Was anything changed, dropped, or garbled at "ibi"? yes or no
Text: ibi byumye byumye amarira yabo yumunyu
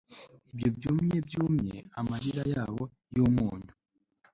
yes